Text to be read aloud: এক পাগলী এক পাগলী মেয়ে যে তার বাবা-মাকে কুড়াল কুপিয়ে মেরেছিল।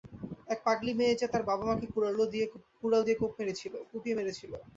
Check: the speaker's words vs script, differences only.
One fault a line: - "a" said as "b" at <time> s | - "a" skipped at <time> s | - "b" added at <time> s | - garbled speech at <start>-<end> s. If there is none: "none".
- "এক পাগলী" skipped at 0.9 s
- "দিয়ে" added at 3.0 s